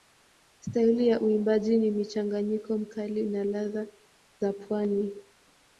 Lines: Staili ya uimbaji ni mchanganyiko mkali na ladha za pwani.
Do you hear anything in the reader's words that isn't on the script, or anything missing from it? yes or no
no